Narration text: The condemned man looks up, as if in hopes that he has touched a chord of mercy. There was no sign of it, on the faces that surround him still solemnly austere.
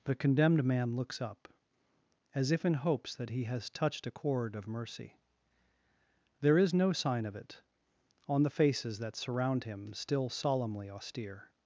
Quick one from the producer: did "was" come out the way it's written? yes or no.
no